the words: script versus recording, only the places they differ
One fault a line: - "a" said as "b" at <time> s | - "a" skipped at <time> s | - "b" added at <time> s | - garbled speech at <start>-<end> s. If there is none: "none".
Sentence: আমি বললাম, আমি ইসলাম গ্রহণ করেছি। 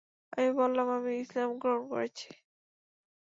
none